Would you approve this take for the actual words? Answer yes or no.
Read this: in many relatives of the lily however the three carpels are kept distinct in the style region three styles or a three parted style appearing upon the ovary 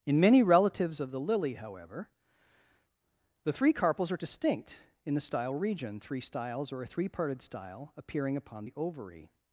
no